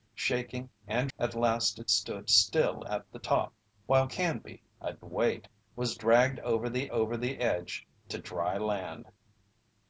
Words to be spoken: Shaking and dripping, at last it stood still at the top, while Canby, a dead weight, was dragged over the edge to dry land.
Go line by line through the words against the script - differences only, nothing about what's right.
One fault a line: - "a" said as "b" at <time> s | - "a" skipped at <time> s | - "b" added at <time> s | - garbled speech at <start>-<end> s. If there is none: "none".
- "dripping" skipped at 1.1 s
- "dead" skipped at 5.0 s
- "over the" added at 6.9 s